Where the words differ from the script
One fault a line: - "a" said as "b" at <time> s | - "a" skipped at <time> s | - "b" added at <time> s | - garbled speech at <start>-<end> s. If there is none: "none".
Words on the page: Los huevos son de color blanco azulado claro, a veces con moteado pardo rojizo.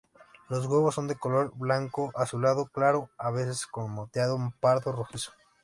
none